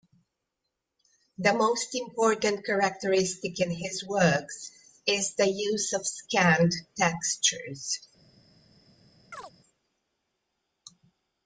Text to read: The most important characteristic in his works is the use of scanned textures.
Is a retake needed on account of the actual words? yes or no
no